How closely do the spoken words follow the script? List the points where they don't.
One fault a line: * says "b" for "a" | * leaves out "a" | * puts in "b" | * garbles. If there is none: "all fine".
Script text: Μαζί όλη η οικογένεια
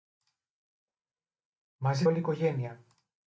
all fine